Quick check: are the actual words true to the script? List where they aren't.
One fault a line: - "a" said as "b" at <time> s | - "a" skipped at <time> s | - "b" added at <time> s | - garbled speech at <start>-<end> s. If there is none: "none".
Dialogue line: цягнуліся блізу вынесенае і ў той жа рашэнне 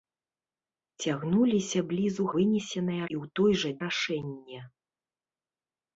none